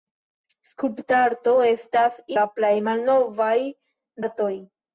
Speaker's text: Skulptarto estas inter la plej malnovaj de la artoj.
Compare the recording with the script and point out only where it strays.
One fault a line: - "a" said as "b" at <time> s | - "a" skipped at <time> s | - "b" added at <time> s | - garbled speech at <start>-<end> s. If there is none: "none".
- "inter" skipped at 2.2 s
- "de la" skipped at 3.6 s